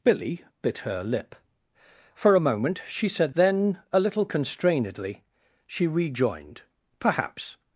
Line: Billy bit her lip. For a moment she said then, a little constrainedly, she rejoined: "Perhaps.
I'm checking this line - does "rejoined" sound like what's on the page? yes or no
yes